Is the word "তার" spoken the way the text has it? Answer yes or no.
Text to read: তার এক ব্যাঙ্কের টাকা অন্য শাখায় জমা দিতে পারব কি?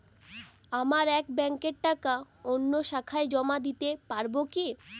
no